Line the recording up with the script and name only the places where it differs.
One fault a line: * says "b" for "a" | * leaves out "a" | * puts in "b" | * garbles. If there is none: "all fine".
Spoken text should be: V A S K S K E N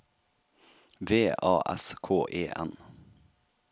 * leaves out "S K"